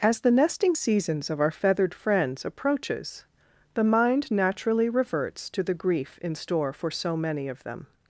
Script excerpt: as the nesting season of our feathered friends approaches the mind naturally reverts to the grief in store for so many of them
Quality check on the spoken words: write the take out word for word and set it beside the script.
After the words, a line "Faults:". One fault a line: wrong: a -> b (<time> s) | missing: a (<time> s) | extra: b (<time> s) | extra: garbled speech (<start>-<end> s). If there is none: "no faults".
as the nesting seasons of our feathered friends approaches the mind naturally reverts to the grief in store for so many of them
Faults:
wrong: season -> seasons (0.7 s)